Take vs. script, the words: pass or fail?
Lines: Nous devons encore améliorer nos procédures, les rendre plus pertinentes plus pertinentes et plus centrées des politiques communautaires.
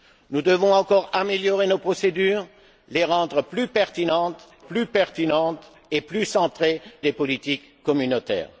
pass